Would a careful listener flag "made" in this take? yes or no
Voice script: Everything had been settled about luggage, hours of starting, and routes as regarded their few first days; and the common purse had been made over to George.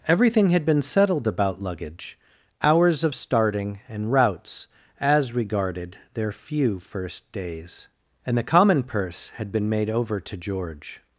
no